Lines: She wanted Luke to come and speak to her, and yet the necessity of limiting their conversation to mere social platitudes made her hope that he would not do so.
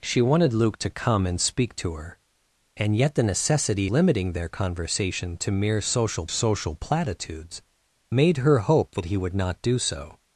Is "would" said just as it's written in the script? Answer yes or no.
yes